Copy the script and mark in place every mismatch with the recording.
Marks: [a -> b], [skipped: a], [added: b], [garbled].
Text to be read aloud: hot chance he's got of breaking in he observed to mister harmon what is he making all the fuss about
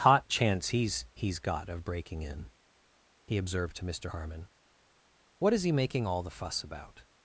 hot chance he's [added: he's] got of breaking in he observed to mister harmon what is he making all the fuss about